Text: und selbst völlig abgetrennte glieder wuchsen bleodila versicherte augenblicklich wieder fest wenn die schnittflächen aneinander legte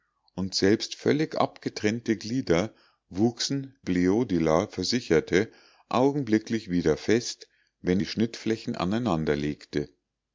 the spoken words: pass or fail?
pass